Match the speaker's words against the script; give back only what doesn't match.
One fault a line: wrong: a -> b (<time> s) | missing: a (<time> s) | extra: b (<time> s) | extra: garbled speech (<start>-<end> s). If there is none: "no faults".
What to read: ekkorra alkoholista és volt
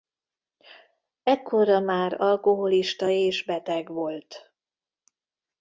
extra: már (1.8 s)
extra: beteg (3.4 s)